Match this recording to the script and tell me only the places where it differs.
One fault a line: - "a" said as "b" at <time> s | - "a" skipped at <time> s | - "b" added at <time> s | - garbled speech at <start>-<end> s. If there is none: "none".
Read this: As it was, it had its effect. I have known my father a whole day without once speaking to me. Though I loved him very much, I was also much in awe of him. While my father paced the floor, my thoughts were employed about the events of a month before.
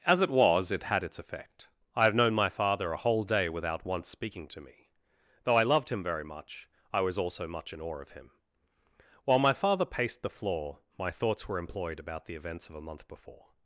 none